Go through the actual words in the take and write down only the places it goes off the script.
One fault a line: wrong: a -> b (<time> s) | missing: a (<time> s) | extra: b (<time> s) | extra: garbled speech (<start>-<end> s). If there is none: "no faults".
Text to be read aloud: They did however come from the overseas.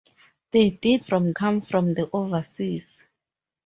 wrong: however -> from (1.0 s)